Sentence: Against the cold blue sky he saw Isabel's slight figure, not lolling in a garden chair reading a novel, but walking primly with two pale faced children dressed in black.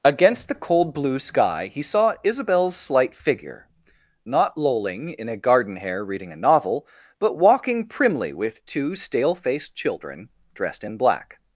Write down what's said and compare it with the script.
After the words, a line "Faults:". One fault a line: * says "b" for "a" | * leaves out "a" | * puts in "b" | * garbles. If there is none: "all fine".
Against the cold blue sky he saw Isabel's slight figure, not lolling in a garden hair reading a novel, but walking primly with two stale faced children dressed in black.
Faults:
* says "hair" for "chair"
* says "stale" for "pale"